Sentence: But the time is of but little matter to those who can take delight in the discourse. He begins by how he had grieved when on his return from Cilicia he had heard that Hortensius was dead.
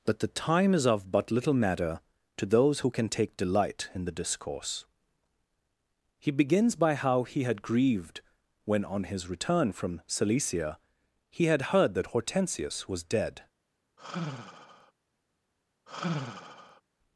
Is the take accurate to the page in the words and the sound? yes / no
no